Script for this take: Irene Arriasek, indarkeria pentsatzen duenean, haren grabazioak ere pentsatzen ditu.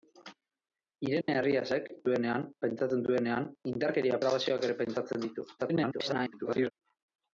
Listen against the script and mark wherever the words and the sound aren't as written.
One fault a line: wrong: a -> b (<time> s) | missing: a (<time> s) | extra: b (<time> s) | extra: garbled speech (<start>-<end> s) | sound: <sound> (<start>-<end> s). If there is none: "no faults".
sound: dropout (1.2-1.3 s)
wrong: indarkeria -> duenean (2.1 s)
wrong: haren -> indarkeria (3.7 s)
extra: garbled speech (5.6-6.7 s)